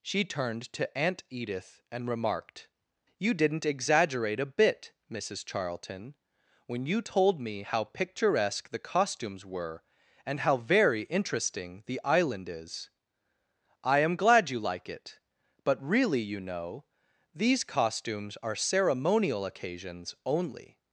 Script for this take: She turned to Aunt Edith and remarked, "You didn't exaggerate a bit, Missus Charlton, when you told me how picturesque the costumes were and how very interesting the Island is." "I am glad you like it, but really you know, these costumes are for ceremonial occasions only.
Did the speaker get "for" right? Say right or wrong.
wrong